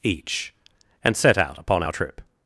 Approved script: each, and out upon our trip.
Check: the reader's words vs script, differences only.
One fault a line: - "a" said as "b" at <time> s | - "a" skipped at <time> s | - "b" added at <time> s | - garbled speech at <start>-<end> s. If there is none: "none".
- "set" added at 1.1 s